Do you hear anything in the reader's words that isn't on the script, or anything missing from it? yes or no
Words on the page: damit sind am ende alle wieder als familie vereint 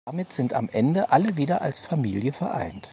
no